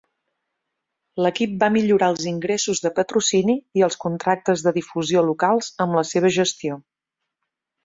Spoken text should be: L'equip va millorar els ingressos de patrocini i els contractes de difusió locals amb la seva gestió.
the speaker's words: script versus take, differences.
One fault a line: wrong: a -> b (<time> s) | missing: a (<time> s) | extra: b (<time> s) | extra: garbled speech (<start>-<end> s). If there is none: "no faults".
no faults